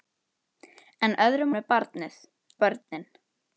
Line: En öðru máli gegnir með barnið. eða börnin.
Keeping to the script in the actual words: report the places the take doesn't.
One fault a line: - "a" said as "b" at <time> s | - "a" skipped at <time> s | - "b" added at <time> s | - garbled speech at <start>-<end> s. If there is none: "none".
- "máli gegnir" skipped at 1.5 s
- "eða" skipped at 2.2 s